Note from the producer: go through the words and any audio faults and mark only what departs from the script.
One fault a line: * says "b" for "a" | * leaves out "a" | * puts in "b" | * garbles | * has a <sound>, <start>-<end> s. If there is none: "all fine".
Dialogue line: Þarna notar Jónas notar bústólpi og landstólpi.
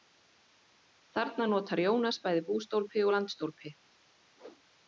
* says "bæði" for "notar"
* has a whoosh, 4.4-4.6 s